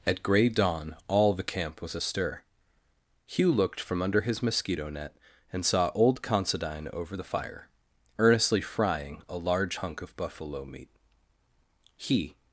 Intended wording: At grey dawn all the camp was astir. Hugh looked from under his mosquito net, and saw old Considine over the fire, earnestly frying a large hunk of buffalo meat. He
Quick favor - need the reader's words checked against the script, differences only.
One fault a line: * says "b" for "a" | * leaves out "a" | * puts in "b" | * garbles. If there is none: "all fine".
all fine